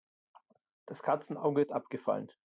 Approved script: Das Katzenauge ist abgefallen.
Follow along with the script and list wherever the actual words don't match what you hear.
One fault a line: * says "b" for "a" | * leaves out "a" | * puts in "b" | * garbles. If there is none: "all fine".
all fine